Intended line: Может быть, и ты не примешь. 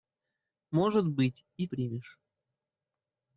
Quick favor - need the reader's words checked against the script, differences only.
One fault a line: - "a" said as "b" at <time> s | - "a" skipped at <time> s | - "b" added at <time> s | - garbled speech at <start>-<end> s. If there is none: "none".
- "ты не" skipped at 1.7 s